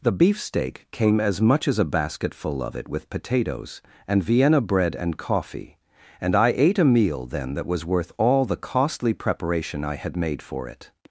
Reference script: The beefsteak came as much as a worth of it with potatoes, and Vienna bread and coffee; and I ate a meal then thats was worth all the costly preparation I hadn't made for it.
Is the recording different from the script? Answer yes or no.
yes